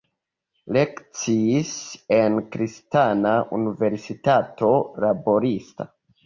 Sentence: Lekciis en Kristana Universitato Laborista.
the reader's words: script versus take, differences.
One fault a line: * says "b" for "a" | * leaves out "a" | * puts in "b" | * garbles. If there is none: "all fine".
all fine